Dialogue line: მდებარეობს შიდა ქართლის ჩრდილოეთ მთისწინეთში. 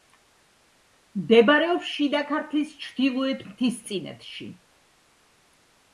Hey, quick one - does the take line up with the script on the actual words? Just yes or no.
yes